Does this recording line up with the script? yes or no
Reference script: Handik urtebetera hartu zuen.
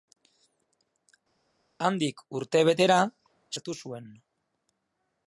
yes